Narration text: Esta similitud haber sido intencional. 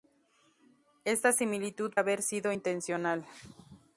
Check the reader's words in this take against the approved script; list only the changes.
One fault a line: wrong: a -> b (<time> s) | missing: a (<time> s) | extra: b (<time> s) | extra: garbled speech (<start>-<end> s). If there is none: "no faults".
no faults